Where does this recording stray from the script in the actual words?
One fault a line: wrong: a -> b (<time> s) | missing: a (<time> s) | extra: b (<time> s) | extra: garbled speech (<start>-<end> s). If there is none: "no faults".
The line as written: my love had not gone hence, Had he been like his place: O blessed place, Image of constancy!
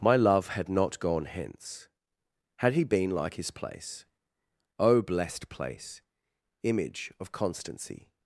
no faults